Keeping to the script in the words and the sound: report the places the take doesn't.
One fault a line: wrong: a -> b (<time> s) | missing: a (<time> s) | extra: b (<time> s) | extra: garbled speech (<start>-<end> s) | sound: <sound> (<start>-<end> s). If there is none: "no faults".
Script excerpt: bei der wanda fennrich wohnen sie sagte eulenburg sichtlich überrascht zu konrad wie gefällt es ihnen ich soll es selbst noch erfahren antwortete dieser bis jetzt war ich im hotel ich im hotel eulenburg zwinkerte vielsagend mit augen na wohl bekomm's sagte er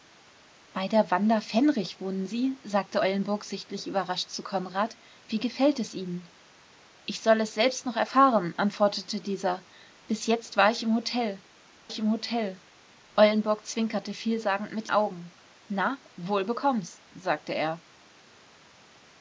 no faults